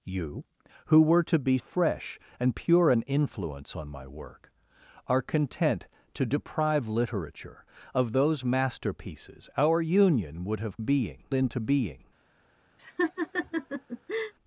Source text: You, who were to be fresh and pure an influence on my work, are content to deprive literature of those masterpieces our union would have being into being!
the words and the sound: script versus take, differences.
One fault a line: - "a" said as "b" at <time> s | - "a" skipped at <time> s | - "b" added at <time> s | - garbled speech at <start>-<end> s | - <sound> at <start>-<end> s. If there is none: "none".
- laugh at 12.8-14.3 s